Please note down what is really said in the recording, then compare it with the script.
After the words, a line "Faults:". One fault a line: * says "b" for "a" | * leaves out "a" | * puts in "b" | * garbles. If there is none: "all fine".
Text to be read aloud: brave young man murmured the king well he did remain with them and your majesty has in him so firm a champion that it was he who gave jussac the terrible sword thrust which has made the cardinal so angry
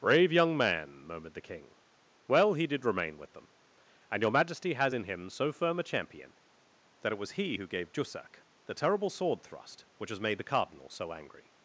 brave young man murmured the king well he did remain with them and your majesty has in him so firm a champion that it was he who gave jussac the terrible sword thrust which has made the cardinal so angry
Faults:
all fine